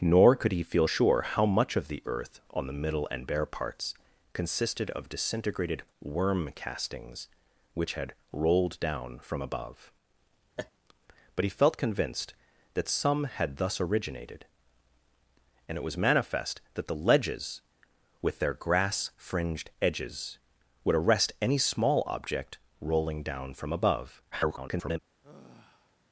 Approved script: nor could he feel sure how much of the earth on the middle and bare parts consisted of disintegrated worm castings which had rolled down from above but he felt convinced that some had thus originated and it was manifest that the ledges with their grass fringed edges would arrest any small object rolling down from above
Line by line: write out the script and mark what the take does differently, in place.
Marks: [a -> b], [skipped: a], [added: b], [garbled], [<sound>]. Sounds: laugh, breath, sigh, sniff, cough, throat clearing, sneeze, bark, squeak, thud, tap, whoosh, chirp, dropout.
nor could he feel sure how much of the earth on the middle and bare parts consisted of disintegrated worm castings which had rolled down from above [laugh] but he felt convinced that some had thus originated and it was manifest that the ledges with their grass fringed edges would arrest any small object rolling down from above [garbled] [sigh]